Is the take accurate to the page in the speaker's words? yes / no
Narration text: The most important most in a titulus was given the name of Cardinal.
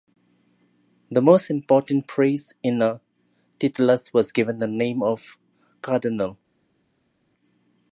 no